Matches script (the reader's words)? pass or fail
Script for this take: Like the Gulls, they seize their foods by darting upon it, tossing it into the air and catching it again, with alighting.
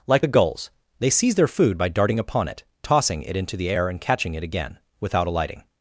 fail